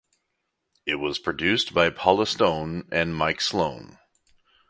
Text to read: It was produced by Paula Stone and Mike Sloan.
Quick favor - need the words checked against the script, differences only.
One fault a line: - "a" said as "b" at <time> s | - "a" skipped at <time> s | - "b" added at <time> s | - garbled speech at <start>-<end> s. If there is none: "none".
none